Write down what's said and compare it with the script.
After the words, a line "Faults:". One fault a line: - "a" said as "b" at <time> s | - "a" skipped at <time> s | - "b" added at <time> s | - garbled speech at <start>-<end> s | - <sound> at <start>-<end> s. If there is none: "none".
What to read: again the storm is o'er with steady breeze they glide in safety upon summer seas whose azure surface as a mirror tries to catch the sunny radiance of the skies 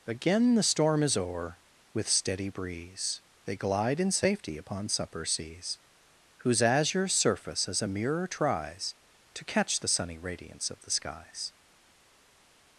again the storm is o'er with steady breeze they glide in safety upon supper seas whose azure surface as a mirror tries to catch the sunny radiance of the skies
Faults:
- "summer" said as "supper" at 4.9 s